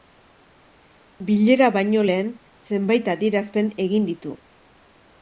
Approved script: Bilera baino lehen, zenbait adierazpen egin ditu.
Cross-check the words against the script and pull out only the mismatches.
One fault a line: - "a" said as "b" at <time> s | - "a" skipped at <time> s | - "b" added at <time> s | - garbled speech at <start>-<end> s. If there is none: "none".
none